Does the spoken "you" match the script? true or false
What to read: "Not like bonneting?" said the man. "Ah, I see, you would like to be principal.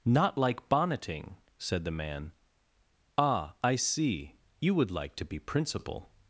true